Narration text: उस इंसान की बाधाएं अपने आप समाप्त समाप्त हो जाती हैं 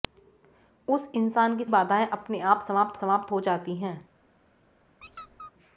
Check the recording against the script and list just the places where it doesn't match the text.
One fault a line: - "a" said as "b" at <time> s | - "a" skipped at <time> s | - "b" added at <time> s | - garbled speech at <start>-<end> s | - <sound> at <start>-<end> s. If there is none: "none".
- squeak at 5.0-5.5 s